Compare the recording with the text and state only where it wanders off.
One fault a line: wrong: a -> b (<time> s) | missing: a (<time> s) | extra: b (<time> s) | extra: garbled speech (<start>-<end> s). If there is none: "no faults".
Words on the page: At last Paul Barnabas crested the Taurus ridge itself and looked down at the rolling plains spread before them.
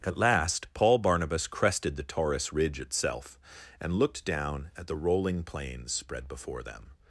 no faults